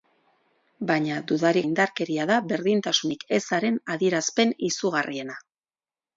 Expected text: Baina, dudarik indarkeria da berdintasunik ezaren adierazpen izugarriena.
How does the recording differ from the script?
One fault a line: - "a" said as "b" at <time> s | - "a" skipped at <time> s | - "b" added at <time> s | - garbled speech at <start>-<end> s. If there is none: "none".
none